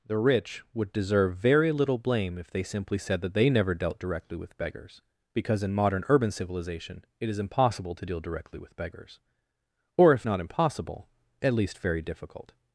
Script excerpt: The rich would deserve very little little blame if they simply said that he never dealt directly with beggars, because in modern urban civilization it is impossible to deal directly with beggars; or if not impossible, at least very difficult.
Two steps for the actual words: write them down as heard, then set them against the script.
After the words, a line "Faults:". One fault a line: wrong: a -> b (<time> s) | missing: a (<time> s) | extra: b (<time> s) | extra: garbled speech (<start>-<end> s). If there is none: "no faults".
The rich would deserve very little blame if they simply said that they never dealt directly with beggars, because in modern urban civilization it is impossible to deal directly with beggars; or if not impossible, at least very difficult.
Faults:
missing: little (2.0 s)
wrong: he -> they (3.3 s)